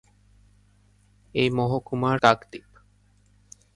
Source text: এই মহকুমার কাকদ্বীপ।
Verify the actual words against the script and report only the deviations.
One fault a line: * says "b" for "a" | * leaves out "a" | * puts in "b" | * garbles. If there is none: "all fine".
all fine